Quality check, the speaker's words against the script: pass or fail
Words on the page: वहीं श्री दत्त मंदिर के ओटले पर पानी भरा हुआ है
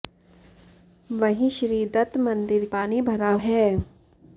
fail